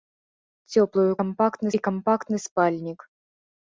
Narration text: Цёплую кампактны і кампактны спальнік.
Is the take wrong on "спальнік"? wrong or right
right